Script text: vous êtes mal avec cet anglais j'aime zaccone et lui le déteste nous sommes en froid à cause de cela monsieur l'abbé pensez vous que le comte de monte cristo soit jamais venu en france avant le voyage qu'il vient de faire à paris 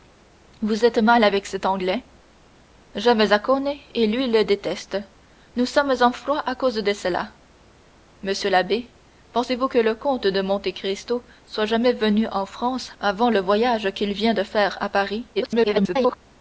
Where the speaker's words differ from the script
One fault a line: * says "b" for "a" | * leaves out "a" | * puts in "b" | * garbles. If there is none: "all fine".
* garbles